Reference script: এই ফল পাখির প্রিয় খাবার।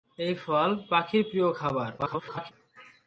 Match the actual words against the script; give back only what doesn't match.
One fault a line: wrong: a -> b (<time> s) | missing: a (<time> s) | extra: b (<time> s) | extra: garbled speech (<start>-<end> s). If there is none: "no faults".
extra: garbled speech (2.0-2.5 s)